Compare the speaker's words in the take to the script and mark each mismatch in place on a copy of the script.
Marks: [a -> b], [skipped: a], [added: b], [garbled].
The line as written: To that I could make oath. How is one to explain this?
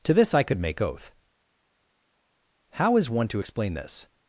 To [that -> this] I could make oath. How is one to explain this?